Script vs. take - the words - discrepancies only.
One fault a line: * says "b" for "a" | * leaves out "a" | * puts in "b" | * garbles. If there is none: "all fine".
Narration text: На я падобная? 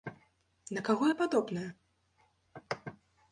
* puts in "каго"